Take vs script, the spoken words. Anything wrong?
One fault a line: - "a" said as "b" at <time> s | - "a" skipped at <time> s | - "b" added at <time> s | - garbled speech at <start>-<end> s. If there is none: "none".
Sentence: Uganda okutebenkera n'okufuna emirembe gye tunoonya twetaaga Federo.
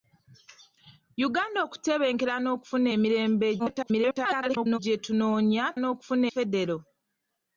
- garbled speech at 3.6-4.8 s
- "twetaaga" said as "n'okufuna" at 5.8 s